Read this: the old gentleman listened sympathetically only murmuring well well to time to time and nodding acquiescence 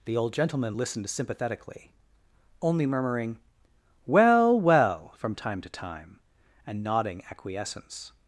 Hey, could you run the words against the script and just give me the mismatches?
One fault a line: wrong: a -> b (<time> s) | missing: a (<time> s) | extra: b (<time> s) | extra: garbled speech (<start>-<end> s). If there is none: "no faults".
wrong: to -> from (5.2 s)